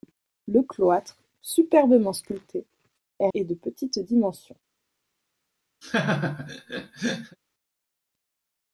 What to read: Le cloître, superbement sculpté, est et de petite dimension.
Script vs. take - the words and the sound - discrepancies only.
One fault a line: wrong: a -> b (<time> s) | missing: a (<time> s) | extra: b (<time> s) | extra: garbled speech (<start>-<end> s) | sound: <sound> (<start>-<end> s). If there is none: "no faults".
sound: laugh (5.8-7.4 s)